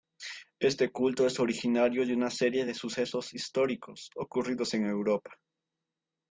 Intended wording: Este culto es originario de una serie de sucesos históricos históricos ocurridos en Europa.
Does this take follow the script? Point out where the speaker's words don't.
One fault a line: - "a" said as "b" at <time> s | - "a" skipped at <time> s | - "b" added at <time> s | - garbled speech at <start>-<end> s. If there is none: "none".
- "históricos" skipped at 4.1 s